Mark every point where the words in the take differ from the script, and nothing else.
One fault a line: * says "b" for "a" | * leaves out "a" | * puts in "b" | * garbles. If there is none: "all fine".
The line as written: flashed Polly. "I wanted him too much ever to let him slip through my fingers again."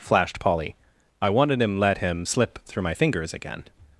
* leaves out "too much ever to"